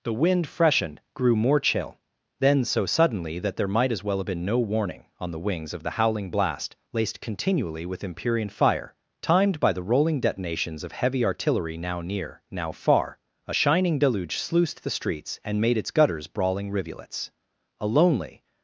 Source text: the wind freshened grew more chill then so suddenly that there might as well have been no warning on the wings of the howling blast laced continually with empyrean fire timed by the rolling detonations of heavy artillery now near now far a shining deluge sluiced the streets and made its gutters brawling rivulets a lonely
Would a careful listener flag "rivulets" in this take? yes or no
no